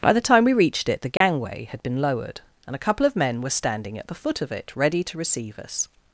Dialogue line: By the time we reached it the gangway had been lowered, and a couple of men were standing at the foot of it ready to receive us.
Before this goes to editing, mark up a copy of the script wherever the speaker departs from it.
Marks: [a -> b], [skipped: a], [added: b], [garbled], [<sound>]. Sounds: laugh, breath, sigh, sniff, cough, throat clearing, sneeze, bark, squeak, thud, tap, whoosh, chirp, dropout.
By the time we reached it the gangway [dropout] had been lowered, and a couple of men were standing at the foot of it ready to receive us.